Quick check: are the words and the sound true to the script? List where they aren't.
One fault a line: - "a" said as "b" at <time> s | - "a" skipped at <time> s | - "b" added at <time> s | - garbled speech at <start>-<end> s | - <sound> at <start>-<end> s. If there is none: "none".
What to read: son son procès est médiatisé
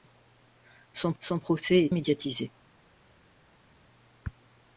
none